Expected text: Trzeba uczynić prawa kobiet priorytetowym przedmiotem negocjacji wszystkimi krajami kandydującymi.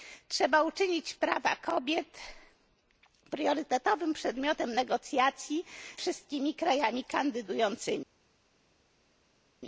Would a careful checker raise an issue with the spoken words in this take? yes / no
no